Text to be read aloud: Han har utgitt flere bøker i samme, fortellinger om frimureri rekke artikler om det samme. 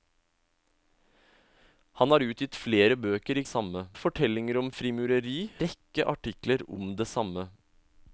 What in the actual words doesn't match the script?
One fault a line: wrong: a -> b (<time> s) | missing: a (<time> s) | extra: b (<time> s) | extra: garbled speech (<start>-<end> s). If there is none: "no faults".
no faults